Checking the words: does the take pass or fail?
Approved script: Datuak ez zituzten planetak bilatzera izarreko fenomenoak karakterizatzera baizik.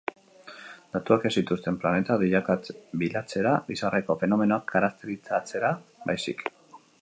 pass